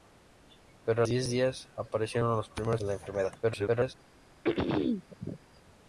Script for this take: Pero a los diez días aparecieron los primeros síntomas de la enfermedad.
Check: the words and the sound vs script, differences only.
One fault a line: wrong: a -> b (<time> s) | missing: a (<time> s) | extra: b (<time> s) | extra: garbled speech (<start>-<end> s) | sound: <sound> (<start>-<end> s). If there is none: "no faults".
missing: los (1.1 s)
missing: síntomas (2.8 s)
extra: garbled speech (3.4-3.9 s)
sound: throat clearing (4.4-5.4 s)